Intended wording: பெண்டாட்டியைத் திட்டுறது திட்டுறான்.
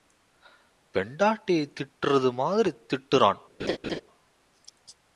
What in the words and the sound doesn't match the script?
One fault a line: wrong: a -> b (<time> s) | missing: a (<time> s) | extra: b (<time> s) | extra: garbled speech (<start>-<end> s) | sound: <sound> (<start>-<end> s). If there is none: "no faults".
extra: மாதிரி (2.3 s)
sound: laugh (3.6-4.0 s)